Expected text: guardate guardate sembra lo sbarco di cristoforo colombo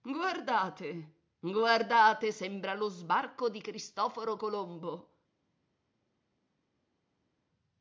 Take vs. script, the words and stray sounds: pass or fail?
pass